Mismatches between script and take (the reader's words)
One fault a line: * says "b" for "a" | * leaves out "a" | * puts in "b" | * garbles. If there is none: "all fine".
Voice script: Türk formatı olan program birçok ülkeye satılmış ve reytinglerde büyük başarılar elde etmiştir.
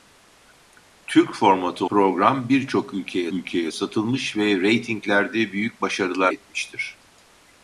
* leaves out "olan"
* puts in "ülkeye"
* leaves out "elde"